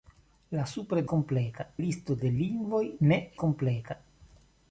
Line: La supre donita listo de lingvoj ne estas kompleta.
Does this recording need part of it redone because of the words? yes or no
yes